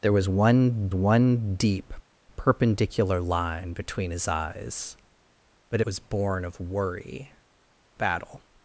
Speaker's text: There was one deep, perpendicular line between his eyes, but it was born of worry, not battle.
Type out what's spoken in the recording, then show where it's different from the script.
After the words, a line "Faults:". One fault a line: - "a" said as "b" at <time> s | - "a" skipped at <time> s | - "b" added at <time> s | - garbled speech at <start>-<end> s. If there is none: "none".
There was one one deep, perpendicular line between his eyes, but was born of worry, battle.
Faults:
- "one" added at 0.9 s
- "it" skipped at 5.8 s
- "not" skipped at 7.3 s